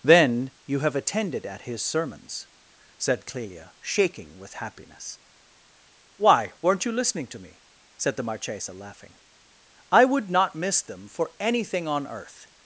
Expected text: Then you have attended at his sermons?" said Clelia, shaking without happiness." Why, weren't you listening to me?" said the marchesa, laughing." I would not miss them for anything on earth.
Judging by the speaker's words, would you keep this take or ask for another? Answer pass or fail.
fail